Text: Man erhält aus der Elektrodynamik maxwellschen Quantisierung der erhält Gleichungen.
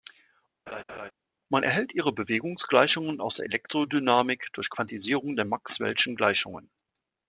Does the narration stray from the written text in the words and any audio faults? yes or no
yes